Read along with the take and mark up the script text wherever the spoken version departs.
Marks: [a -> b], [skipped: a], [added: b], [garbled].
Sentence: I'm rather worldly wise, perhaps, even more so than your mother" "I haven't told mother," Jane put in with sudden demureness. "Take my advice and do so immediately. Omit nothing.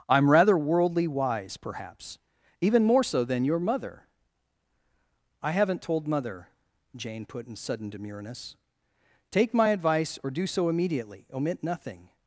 I'm rather worldly wise, perhaps, even more so than your mother" "I haven't told mother," Jane put in [skipped: with] sudden demureness. "Take my advice [and -> or] do so immediately. Omit nothing.